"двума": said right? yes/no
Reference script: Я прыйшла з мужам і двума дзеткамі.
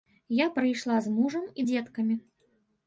no